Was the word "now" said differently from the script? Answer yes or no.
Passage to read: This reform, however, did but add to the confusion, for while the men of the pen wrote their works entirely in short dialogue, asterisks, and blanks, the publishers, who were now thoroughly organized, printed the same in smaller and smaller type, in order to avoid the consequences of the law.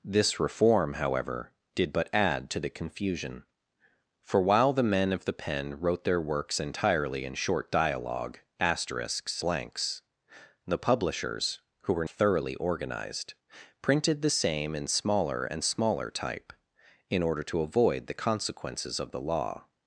yes